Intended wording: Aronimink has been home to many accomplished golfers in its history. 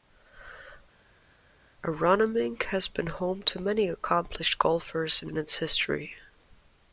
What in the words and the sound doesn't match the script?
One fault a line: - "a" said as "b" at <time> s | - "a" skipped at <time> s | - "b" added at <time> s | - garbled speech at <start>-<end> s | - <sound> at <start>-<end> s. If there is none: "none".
- "in" added at 5.3 s